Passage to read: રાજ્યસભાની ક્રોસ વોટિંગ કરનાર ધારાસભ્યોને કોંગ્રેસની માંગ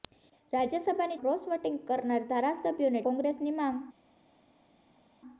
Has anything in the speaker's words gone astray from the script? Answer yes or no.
no